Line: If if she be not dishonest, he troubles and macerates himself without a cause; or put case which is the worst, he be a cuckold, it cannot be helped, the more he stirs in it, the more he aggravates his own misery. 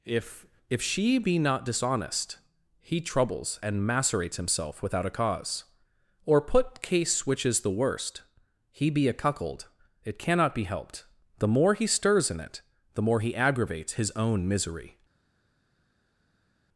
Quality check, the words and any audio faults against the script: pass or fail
pass